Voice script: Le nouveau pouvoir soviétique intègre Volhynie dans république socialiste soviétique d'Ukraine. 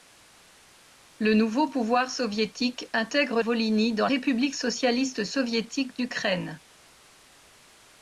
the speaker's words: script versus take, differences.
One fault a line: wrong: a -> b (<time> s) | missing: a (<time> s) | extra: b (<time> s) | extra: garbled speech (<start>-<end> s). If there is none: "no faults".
no faults